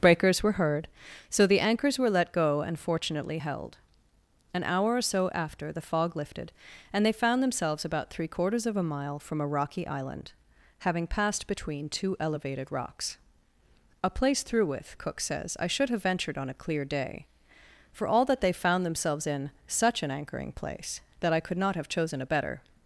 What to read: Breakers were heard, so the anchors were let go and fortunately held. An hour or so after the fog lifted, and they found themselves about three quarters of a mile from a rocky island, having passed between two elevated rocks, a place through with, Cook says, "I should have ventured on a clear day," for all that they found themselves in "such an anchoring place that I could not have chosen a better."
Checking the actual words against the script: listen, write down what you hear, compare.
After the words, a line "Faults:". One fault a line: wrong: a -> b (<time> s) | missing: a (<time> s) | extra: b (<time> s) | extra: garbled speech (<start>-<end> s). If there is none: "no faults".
Breakers were heard, so the anchors were let go and fortunately held. An hour or so after the fog lifted, and they found themselves about three quarters of a mile from a rocky island, having passed between two elevated rocks, a place through with, Cook says, "I should have ventured on a clear day," for all that they found themselves in "such an anchoring place that I could not have chosen a better."
Faults:
no faults